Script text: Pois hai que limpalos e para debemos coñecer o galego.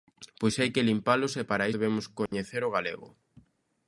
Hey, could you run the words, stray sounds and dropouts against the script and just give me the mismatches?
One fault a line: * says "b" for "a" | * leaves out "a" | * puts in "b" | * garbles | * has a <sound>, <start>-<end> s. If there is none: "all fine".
* has a dropout, 2.3-2.3 s